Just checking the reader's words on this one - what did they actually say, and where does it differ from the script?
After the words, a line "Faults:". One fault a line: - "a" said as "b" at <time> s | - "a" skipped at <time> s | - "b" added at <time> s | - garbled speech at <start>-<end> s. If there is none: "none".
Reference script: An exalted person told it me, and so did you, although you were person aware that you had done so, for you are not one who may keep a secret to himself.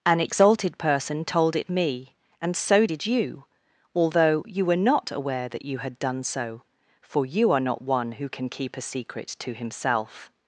An exalted person told it me, and so did you, although you were not aware that you had done so, for you are not one who can keep a secret to himself.
Faults:
- "person" said as "not" at 4.8 s
- "may" said as "can" at 8.3 s